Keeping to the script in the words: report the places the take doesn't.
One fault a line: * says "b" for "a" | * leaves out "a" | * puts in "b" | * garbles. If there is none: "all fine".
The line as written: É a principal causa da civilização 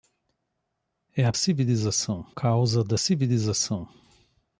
* says "civilização" for "principal"